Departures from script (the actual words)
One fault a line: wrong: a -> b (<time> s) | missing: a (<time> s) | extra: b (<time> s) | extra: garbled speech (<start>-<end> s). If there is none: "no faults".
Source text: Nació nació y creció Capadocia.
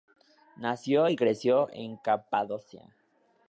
missing: nació (1.1 s)
extra: en (1.7 s)